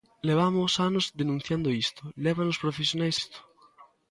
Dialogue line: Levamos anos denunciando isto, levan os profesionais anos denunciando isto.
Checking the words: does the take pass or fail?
fail